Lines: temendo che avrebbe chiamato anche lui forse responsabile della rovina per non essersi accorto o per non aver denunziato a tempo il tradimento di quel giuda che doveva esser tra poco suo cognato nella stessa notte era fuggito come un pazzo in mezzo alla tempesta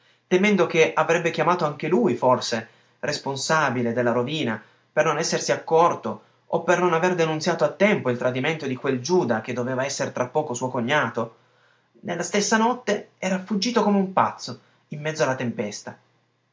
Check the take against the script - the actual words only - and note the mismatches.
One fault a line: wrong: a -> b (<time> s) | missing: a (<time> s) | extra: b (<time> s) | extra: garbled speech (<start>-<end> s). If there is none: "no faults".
no faults